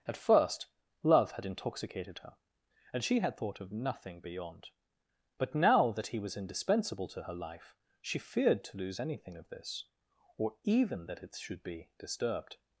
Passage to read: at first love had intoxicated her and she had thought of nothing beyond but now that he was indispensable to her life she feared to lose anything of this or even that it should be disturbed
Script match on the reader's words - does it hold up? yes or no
yes